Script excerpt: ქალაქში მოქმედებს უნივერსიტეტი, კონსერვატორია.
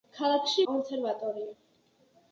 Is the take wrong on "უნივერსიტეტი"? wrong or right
wrong